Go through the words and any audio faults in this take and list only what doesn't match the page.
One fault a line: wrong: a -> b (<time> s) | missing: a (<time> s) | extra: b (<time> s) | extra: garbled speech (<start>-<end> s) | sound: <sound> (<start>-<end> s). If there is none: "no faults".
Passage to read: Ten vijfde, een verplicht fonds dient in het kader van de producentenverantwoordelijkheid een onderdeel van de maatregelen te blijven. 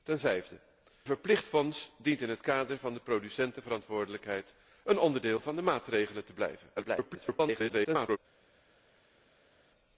missing: een (0.6 s)
extra: garbled speech (6.8-8.2 s)